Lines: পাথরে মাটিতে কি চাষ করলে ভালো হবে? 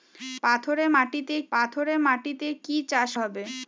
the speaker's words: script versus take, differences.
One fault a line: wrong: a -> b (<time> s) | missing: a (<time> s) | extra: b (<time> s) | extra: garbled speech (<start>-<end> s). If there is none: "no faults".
extra: পাথরে মাটিতে (1.5 s)
missing: করলে ভালো (3.1 s)